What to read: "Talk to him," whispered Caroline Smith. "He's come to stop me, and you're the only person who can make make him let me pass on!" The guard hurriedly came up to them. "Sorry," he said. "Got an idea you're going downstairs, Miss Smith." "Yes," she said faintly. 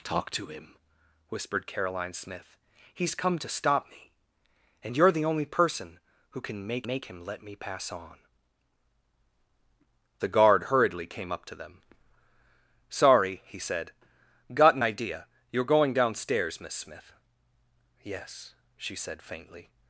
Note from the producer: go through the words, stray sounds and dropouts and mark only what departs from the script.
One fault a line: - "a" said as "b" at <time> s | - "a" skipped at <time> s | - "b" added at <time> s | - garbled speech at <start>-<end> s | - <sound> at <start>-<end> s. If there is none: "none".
none